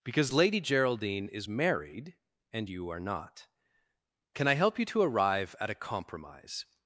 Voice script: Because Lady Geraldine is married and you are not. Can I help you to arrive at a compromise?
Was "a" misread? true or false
false